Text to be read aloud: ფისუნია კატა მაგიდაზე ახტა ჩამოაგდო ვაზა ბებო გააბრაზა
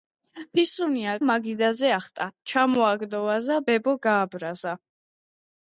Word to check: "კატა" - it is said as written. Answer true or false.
false